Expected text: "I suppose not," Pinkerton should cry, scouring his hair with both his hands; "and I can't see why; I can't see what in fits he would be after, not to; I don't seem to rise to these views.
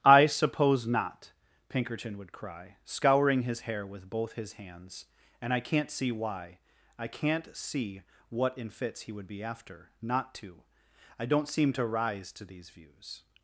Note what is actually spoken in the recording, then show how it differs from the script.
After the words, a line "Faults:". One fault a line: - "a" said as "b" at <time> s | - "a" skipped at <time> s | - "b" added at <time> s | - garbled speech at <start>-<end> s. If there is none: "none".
"I suppose not," Pinkerton would cry, scouring his hair with both his hands; "and I can't see why; I can't see what in fits he would be after, not to; I don't seem to rise to these views.
Faults:
- "should" said as "would" at 2.2 s